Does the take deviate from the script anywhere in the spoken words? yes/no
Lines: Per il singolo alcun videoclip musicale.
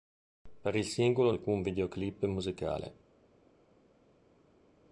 no